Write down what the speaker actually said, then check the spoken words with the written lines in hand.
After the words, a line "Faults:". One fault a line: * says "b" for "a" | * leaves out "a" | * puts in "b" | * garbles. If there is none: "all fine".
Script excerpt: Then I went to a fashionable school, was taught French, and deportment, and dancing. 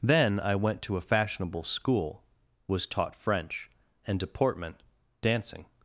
Then I went to a fashionable school, was taught French, and deportment, dancing.
Faults:
* leaves out "and"